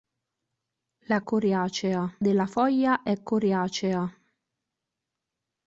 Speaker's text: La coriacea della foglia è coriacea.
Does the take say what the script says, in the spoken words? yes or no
yes